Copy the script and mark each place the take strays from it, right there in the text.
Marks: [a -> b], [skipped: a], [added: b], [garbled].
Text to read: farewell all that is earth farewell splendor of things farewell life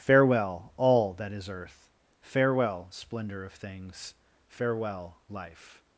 farewell all that is earth farewell splendor of things farewell life